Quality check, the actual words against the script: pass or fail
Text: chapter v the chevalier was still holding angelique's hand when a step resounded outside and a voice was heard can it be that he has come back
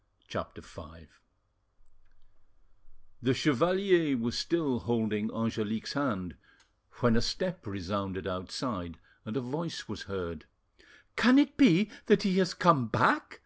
pass